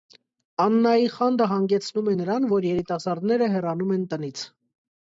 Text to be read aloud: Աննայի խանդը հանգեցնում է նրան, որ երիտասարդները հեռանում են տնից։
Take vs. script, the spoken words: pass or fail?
pass